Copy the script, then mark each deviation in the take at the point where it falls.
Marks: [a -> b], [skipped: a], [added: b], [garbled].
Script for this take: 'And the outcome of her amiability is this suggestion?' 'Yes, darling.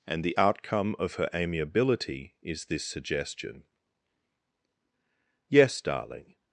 'And the outcome of her amiability is this suggestion?' 'Yes, darling.